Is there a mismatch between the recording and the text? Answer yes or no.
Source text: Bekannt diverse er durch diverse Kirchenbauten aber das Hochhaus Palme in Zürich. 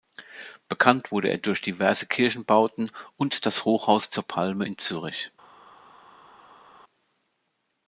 yes